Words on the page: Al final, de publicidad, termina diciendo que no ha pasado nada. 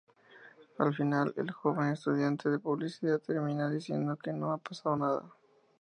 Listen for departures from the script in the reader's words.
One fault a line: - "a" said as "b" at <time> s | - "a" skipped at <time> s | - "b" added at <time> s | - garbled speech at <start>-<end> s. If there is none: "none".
- "el joven estudiante" added at 1.3 s